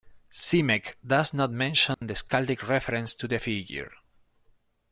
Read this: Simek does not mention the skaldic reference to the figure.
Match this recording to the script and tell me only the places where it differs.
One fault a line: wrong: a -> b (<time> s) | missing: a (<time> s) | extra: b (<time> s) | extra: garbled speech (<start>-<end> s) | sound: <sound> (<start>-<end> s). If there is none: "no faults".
sound: dropout (1.9-2.0 s)